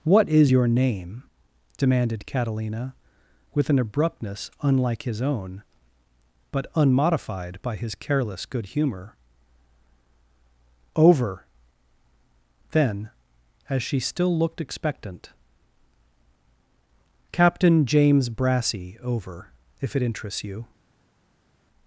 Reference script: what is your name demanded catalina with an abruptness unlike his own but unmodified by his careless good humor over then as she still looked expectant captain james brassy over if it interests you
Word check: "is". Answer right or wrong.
right